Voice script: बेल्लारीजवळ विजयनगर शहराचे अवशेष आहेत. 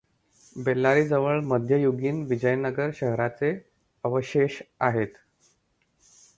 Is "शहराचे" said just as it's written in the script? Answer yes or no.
yes